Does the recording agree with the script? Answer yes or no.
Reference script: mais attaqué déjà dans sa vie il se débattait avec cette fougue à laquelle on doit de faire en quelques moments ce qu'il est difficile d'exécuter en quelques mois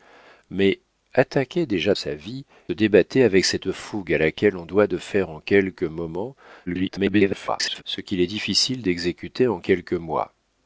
no